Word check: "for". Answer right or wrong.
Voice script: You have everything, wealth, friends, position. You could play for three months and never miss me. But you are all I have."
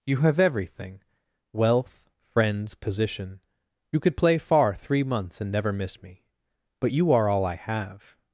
wrong